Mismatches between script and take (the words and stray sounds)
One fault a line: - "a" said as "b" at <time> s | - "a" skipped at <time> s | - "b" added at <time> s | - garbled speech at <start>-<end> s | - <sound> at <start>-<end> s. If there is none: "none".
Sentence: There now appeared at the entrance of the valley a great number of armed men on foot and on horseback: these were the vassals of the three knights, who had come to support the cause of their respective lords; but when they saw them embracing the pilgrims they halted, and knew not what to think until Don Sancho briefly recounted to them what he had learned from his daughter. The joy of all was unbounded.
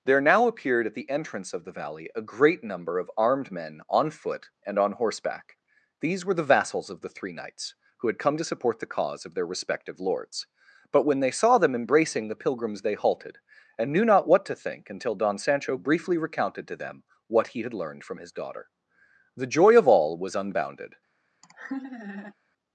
- laugh at 21.4-22.3 s